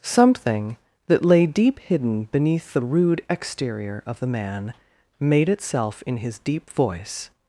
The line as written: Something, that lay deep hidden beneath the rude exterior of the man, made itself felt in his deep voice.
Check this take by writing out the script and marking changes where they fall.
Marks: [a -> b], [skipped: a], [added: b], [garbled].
Something, that lay deep hidden beneath the rude exterior of the man, made itself [skipped: felt] in his deep voice.